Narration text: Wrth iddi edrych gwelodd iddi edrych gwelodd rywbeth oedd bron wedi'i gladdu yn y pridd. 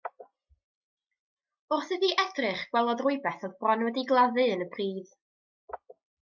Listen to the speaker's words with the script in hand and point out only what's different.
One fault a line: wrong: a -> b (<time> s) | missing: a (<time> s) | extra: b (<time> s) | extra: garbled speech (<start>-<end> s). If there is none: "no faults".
missing: iddi edrych gwelodd (3.0 s)